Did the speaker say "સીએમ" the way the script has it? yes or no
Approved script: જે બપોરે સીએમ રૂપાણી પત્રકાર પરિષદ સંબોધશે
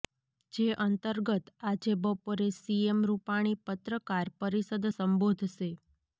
yes